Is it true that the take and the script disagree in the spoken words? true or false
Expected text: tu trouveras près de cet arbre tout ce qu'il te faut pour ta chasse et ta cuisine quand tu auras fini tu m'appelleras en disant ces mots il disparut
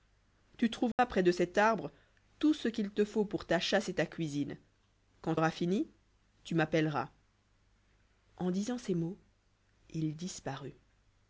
true